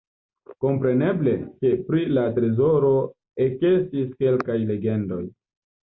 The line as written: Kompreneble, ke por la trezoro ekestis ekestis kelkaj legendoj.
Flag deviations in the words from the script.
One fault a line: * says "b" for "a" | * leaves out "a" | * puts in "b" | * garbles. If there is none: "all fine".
* says "pri" for "por"
* leaves out "ekestis"